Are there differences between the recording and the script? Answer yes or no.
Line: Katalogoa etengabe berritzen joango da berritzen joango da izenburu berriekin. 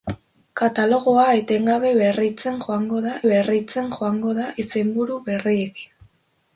no